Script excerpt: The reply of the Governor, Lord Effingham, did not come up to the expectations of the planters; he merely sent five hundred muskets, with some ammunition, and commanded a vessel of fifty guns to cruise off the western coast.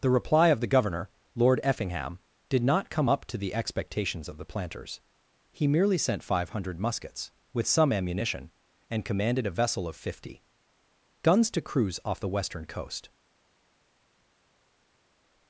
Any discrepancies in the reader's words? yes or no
no